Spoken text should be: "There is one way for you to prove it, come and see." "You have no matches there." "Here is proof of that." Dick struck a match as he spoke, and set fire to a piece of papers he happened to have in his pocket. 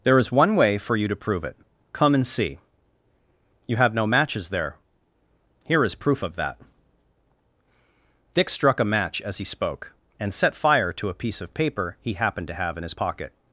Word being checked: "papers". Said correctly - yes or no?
no